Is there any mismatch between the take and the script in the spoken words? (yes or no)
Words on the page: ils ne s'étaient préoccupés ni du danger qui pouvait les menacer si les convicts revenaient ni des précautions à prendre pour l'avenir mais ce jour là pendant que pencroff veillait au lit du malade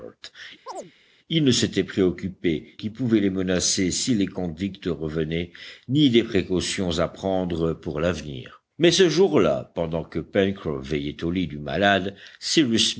yes